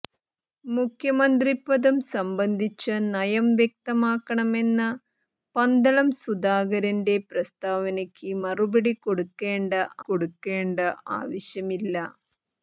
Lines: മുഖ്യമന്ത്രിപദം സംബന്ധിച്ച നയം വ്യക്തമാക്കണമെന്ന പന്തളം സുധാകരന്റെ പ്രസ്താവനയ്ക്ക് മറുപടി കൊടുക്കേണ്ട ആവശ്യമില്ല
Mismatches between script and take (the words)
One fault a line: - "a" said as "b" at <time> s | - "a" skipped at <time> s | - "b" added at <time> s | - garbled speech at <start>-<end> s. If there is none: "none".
- "കൊടുക്കേണ്ട" added at 10.0 s